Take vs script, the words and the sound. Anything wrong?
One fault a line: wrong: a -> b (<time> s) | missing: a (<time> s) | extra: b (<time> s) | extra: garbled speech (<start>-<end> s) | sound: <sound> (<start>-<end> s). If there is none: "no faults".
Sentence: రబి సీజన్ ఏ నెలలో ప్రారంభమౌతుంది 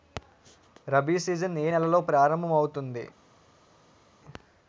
no faults